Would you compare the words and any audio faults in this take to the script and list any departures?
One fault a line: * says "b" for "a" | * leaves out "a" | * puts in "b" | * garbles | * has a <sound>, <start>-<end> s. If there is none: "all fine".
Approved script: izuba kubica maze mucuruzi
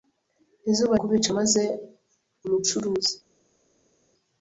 all fine